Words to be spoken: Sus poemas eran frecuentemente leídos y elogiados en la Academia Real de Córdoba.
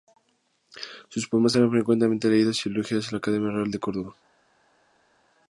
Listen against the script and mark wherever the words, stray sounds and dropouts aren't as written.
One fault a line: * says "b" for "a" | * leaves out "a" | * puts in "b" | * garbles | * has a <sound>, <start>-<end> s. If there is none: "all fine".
all fine